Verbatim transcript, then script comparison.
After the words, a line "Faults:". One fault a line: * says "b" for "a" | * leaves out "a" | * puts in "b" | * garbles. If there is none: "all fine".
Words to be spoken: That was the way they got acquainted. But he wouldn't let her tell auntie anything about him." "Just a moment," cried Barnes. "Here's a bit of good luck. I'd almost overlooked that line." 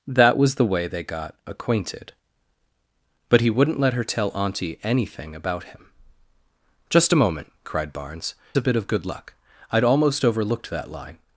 That was the way they got acquainted. But he wouldn't let her tell auntie anything about him." "Just a moment," cried Barnes. "A bit of good luck. I'd almost overlooked that line."
Faults:
* leaves out "Here's"